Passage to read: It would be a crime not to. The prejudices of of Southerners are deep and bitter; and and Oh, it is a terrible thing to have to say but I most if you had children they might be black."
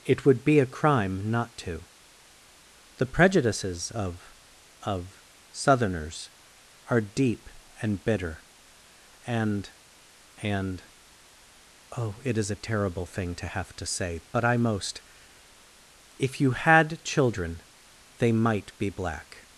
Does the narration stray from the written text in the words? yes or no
no